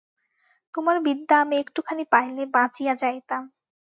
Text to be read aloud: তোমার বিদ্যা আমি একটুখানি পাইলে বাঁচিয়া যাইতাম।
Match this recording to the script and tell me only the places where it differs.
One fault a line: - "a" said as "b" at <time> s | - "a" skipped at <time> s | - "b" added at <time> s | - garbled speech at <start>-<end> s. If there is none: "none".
none